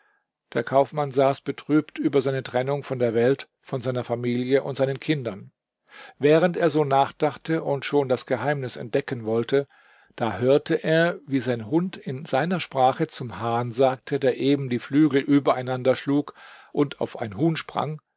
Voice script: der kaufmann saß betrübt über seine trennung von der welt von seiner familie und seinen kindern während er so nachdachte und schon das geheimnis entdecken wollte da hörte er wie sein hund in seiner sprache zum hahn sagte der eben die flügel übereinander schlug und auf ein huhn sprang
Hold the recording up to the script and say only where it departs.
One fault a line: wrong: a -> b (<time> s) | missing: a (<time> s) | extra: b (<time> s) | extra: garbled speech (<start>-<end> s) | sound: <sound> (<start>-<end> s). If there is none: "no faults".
no faults